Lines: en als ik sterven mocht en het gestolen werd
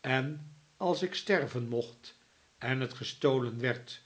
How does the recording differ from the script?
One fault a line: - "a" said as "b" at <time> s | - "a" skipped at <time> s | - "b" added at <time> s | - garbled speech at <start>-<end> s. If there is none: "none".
none